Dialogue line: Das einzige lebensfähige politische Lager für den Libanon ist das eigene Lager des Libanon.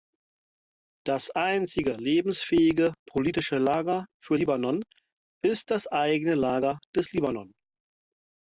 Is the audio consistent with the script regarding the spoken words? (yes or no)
no